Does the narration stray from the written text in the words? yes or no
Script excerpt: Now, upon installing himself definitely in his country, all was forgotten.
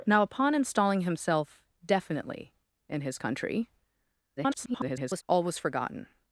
yes